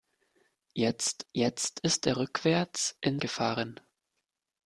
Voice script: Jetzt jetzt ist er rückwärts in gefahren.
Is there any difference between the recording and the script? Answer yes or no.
no